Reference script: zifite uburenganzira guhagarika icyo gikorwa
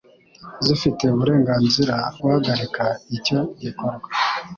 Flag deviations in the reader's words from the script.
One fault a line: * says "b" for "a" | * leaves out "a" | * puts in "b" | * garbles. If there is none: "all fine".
all fine